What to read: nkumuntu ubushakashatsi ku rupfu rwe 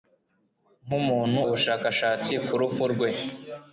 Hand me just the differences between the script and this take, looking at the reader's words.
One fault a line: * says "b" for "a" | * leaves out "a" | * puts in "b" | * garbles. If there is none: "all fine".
all fine